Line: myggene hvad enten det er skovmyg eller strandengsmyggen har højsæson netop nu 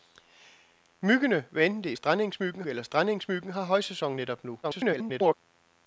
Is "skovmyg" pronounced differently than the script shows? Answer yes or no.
yes